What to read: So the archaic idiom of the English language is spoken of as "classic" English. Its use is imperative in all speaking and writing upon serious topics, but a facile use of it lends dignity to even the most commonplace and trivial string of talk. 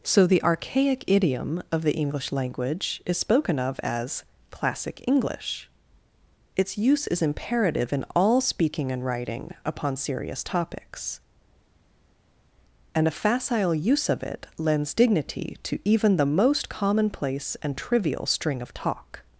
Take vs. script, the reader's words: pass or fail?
fail